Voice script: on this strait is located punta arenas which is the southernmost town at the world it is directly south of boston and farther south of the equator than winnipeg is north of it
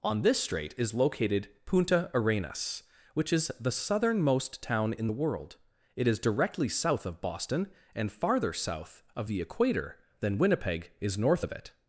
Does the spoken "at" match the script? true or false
false